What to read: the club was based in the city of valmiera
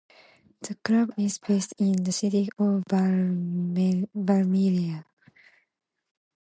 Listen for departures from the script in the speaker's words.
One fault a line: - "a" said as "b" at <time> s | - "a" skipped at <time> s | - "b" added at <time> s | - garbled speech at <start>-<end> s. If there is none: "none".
- "was" said as "is" at 1.1 s